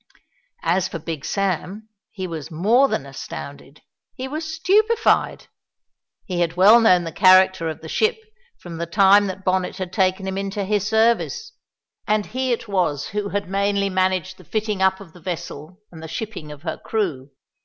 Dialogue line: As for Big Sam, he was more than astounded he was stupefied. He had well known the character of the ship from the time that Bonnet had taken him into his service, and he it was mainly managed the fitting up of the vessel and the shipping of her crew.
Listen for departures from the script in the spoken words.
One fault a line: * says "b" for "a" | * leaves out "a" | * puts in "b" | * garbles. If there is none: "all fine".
* puts in "who had"